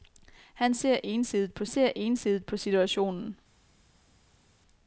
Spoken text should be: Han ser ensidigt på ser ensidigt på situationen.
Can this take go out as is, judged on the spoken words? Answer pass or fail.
pass